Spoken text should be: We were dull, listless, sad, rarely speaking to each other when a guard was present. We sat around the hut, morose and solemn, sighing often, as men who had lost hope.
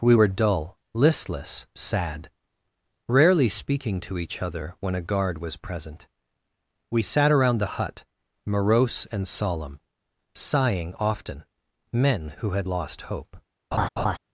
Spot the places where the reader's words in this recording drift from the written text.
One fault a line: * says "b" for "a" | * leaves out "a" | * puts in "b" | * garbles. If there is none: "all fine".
* leaves out "as"